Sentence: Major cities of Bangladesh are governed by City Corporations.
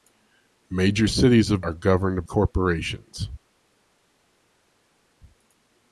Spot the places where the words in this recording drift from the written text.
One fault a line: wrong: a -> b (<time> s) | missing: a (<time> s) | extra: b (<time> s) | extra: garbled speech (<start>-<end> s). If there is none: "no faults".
missing: Bangladesh (1.6 s)
missing: by City (2.2 s)